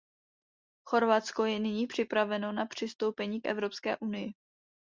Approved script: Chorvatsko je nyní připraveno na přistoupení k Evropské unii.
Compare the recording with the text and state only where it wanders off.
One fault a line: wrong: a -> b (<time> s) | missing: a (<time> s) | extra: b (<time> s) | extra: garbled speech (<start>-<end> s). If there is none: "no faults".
no faults